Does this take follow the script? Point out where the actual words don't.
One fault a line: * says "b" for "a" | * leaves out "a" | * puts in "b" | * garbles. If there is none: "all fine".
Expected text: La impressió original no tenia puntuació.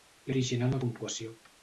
* leaves out "impressió"
* leaves out "tenia"